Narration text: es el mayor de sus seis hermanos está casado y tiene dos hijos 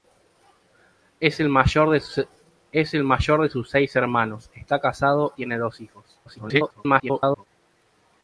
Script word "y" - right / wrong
wrong